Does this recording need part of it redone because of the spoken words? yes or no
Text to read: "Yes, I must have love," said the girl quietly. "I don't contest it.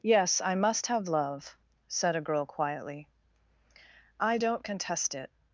yes